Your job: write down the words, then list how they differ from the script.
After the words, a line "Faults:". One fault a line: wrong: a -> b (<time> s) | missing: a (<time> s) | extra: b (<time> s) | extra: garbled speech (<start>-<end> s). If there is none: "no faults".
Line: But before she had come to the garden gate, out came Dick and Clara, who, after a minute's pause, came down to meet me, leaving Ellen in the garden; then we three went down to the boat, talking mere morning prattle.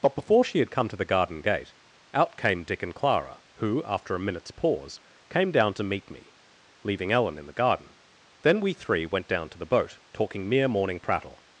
But before she had come to the garden gate, out came Dick and Clara, who, after a minute's pause, came down to meet me, leaving Ellen in the garden; then we three went down to the boat, talking mere morning prattle.
Faults:
no faults